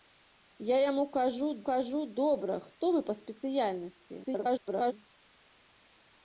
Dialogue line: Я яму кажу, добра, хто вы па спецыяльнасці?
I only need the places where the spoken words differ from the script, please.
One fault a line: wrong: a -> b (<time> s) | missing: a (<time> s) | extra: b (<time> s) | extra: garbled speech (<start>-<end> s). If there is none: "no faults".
extra: кажу (1.7 s)
extra: garbled speech (4.2-4.9 s)